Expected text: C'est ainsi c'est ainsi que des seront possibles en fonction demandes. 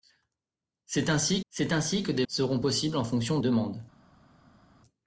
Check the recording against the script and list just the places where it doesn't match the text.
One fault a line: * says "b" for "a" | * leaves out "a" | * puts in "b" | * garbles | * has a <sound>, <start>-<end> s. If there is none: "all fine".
all fine